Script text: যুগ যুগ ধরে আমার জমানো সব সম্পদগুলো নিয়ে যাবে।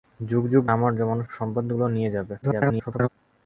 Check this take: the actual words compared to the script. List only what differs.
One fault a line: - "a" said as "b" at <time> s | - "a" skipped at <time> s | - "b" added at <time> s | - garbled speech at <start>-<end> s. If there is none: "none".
- "ধরে" skipped at 0.6 s
- "সব" skipped at 1.2 s
- garbled speech at 2.4-3.1 s